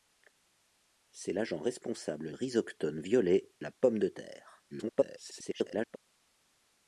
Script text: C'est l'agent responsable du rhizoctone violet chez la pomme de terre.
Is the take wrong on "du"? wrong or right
wrong